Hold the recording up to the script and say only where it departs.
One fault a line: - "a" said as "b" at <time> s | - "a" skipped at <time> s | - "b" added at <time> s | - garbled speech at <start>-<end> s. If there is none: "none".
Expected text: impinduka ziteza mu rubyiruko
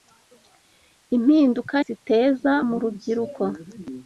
none